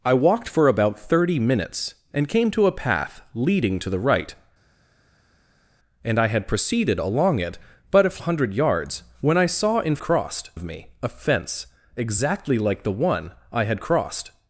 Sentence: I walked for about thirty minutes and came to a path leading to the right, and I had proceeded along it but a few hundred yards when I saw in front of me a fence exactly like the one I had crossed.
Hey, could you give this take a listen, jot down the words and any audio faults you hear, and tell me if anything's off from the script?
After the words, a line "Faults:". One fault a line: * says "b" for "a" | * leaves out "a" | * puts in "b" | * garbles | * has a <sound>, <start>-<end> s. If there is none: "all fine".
I walked for about thirty minutes and came to a path leading to the right, and I had proceeded along it but a hundred yards when I saw in crossed of me a fence exactly like the one I had crossed.
Faults:
* leaves out "few"
* says "crossed" for "front"